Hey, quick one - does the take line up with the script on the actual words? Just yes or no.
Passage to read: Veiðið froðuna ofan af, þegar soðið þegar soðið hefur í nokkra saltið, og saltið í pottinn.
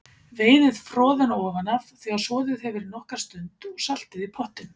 no